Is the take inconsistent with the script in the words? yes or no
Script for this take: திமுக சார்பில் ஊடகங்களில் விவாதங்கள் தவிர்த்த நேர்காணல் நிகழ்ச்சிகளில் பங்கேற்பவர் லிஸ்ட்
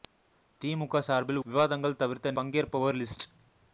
yes